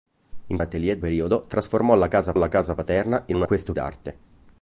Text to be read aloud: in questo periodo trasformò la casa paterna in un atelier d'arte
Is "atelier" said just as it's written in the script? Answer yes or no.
no